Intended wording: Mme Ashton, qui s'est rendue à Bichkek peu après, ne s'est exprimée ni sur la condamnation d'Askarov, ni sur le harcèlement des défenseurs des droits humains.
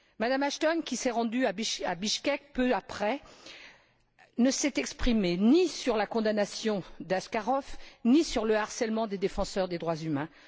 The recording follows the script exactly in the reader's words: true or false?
true